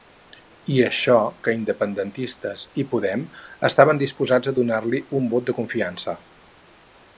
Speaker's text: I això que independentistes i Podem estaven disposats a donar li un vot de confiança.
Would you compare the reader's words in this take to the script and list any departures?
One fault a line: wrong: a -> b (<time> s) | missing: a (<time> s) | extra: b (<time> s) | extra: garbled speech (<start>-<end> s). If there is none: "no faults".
no faults